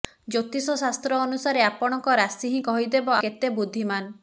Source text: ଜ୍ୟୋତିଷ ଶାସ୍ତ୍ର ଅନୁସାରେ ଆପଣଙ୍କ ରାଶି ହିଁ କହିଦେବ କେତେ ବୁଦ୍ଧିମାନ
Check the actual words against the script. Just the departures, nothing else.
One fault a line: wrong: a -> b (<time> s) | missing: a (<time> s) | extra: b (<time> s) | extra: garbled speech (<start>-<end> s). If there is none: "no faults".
no faults